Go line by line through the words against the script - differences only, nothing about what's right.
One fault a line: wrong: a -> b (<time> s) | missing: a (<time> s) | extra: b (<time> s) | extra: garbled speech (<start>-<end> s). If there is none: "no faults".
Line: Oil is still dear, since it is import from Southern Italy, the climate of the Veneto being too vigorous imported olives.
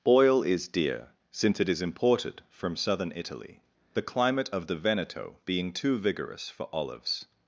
missing: still (0.7 s)
wrong: import -> imported (1.8 s)
wrong: imported -> for (6.5 s)